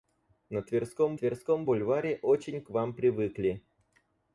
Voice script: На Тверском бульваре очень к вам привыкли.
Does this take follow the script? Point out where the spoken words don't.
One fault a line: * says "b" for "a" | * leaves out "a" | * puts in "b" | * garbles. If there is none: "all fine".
* puts in "Тверском"